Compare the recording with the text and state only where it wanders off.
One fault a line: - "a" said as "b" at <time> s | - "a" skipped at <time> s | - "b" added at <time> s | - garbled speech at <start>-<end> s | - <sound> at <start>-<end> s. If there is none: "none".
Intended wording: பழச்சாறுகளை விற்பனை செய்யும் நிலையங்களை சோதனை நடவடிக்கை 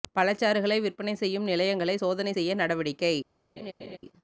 - "செய்ய" added at 2.3 s
- laugh at 3.6-4.0 s